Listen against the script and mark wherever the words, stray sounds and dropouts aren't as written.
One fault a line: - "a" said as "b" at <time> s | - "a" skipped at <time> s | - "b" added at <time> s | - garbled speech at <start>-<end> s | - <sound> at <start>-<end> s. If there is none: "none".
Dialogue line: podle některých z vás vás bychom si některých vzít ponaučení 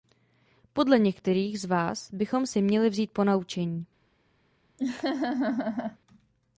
- "vás" skipped at 2.1 s
- "některých" said as "měli" at 2.6 s
- laugh at 4.8-6.0 s